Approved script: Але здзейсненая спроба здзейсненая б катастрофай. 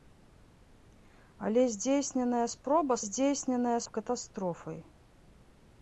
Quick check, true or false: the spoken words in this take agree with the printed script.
true